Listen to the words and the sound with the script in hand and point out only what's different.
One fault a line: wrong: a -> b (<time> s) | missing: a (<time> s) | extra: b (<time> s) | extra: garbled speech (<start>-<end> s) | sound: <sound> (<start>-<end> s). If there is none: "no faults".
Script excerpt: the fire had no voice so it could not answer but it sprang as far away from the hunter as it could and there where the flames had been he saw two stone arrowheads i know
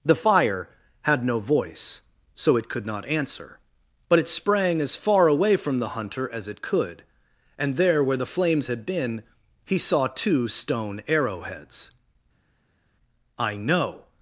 no faults